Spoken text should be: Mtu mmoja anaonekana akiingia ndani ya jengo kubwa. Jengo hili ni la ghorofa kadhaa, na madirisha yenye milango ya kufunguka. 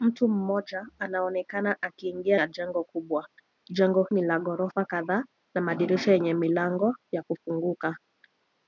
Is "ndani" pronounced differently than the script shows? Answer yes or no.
yes